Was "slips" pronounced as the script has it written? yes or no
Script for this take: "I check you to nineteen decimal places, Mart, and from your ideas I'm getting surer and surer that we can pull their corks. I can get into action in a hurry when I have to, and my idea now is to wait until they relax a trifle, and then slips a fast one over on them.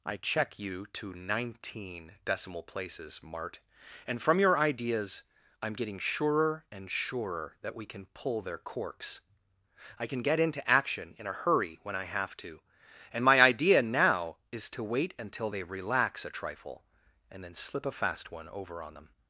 no